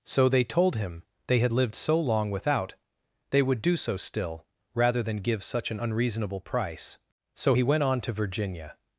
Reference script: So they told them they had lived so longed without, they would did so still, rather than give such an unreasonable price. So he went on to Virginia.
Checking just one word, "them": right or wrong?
wrong